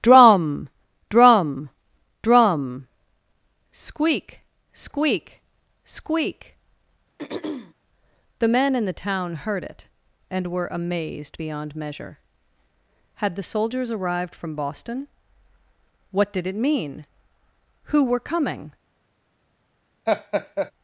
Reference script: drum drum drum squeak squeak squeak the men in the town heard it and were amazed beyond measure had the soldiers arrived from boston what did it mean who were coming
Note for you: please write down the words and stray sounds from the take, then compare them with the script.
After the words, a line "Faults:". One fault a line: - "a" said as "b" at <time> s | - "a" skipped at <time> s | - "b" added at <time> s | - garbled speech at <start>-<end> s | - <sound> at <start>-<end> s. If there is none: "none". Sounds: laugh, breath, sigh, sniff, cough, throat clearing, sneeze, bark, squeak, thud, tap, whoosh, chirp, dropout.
drum drum drum squeak squeak squeak the men in the town heard it and were amazed beyond measure had the soldiers arrived from boston what did it mean who were coming
Faults:
- throat clearing at 7.2-7.7 s
- laugh at 20.1-20.7 s